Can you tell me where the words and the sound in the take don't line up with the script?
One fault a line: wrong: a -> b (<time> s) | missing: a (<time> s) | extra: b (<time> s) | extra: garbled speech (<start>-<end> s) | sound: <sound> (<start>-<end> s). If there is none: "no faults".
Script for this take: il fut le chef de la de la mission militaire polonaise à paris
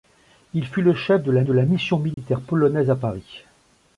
sound: dropout (2.1-2.2 s)